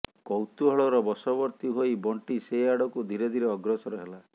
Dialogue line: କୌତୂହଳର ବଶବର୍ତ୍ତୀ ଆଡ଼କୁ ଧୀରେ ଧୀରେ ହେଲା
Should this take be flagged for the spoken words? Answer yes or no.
yes